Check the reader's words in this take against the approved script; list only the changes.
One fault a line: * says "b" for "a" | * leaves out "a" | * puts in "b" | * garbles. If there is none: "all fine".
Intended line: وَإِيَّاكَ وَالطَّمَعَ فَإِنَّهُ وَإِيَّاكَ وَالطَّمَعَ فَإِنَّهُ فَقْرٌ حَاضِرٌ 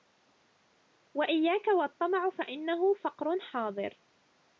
* leaves out "وَإِيَّاكَ وَالطَّمَعَ فَإِنَّهُ"